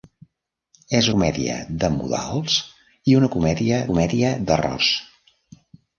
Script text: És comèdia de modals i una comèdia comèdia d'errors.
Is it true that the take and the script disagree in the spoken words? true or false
false